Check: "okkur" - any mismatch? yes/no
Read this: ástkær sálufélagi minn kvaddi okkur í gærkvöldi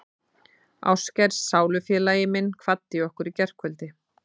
no